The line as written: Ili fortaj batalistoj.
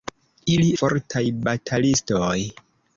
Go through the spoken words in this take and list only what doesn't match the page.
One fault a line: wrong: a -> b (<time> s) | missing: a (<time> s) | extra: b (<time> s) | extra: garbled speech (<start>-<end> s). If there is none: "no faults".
no faults